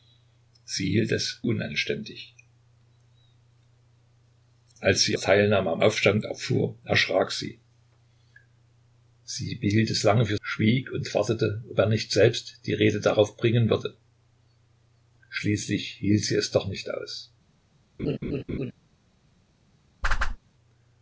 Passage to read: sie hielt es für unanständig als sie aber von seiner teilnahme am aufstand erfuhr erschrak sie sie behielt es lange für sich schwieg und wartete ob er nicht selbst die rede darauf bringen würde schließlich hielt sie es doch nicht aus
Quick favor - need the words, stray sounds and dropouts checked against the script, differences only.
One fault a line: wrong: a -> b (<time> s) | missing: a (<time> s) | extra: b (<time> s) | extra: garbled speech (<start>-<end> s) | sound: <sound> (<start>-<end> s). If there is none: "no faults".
missing: für (1.4 s)
missing: aber von seiner (5.2 s)
missing: sich (10.4 s)
sound: laugh (18.0-18.7 s)
sound: whoosh (20.0-20.4 s)